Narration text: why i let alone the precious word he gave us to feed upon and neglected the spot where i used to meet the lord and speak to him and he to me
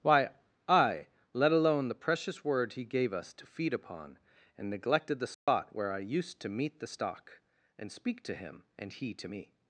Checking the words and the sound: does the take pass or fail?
fail